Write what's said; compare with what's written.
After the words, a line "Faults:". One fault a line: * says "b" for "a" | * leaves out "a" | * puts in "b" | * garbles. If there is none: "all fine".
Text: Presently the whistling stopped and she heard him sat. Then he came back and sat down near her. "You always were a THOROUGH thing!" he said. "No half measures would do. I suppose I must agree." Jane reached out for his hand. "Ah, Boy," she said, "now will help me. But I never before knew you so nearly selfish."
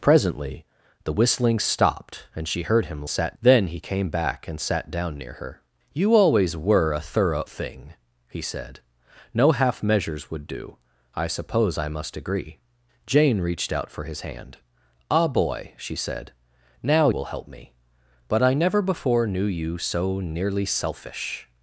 Presently the whistling stopped and she heard him sat. Then he came back and sat down near her. "You always were a THOROUGH thing!" he said. "No half measures would do. I suppose I must agree." Jane reached out for his hand. "Ah, Boy," she said, "now will help me. But I never before knew you so nearly selfish."
Faults:
all fine